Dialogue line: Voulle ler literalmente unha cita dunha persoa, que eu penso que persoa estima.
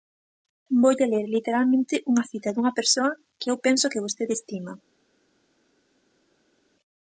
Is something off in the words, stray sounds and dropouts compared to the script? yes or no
yes